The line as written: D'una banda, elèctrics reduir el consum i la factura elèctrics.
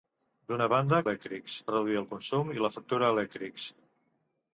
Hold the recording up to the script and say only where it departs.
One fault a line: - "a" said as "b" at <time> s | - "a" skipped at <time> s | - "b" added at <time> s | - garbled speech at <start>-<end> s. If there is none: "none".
none